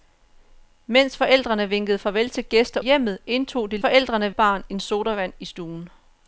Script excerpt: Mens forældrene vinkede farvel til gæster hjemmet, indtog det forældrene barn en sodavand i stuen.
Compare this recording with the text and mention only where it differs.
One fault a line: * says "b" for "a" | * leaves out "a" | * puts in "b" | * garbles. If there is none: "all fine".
all fine